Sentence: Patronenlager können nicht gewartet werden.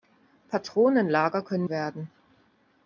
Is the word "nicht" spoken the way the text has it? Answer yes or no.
no